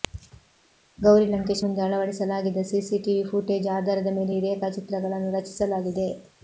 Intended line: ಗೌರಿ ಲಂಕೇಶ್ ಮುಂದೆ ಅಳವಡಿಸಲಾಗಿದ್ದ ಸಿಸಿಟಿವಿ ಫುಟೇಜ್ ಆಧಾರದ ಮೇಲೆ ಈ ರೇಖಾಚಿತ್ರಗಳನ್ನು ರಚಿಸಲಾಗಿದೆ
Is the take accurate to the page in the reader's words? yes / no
yes